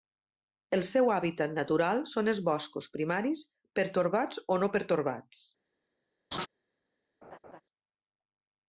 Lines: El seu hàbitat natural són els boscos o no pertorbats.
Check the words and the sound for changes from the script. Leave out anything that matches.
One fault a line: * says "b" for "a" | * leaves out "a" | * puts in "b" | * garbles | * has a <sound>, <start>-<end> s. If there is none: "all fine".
* puts in "primaris pertorbats"
* has a laugh, 6.3-6.5 s
* has a laugh, 7.2-7.6 s